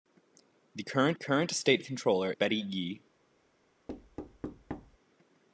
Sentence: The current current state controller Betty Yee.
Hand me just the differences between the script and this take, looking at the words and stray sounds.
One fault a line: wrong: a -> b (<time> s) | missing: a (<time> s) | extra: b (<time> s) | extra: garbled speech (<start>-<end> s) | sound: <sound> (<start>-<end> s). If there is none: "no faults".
sound: thud (3.9-5.0 s)